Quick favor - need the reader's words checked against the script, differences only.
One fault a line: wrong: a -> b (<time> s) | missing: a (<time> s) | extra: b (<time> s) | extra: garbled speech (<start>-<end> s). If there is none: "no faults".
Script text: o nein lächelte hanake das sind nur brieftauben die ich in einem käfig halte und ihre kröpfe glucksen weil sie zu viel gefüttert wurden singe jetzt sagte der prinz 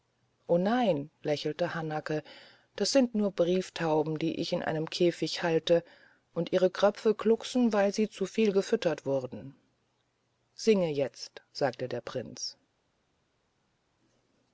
no faults